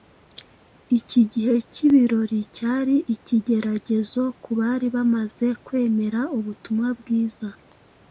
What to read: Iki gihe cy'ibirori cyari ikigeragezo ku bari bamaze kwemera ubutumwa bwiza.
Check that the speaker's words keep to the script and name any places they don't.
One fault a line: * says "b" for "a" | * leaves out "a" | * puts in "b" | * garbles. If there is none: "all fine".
all fine